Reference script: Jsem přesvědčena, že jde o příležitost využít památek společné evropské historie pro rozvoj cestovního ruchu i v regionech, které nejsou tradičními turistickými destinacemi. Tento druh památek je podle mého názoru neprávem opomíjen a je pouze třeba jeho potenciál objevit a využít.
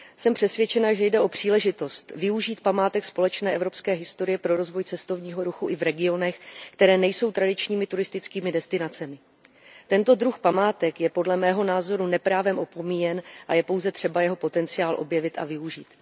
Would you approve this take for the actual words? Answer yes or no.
yes